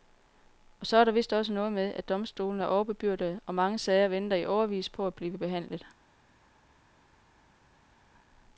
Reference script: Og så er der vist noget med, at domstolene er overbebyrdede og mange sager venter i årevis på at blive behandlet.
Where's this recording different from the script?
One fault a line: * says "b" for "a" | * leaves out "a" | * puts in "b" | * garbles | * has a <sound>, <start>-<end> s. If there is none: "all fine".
* puts in "også"